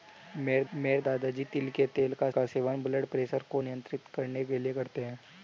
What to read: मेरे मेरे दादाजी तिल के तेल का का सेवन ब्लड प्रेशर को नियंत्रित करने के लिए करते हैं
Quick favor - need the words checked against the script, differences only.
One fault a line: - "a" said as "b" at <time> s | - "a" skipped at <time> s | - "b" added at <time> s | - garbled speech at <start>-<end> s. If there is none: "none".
none